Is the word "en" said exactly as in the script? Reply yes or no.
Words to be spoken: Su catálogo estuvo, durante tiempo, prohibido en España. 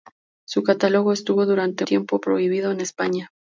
yes